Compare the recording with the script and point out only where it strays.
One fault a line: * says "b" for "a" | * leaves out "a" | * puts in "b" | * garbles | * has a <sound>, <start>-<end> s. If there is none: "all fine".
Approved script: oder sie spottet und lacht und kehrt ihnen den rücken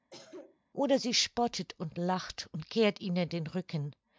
* has a cough, 0.1-0.6 s